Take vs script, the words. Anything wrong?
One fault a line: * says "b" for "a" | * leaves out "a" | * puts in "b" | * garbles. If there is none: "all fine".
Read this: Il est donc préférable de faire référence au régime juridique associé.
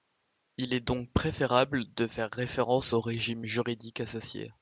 all fine